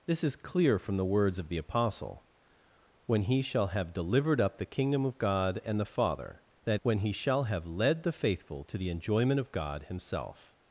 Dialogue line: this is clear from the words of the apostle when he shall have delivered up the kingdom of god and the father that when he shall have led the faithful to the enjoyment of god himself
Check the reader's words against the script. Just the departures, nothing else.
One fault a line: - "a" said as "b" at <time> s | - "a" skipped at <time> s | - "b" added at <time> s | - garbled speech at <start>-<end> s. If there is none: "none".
none